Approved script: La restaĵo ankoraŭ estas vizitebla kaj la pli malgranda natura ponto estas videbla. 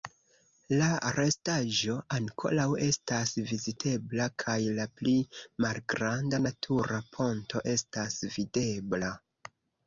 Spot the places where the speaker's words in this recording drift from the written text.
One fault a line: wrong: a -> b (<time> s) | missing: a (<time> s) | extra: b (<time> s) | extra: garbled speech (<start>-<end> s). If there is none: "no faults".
no faults